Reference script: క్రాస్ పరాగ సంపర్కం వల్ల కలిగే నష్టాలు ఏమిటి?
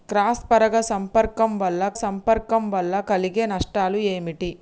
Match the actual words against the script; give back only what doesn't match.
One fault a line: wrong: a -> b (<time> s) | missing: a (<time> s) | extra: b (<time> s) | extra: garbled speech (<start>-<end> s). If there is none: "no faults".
extra: సంపర్కం వల్ల (1.9 s)